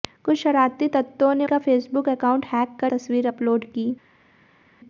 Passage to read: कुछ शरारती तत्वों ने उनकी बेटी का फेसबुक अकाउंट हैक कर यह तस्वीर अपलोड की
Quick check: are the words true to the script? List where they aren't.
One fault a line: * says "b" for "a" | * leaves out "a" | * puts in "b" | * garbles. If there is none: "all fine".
* leaves out "उनकी बेटी"
* leaves out "यह"